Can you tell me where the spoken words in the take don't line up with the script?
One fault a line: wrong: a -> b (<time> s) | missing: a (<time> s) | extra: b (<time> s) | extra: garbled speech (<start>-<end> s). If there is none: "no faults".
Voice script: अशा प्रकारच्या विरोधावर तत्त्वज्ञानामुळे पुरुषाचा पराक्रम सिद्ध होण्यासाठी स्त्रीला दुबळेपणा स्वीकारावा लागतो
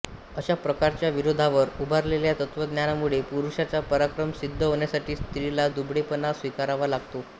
extra: उभारलेल्या (1.8 s)